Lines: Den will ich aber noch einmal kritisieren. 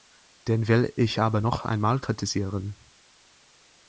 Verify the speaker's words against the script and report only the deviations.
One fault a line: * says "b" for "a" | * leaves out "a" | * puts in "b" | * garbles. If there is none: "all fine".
all fine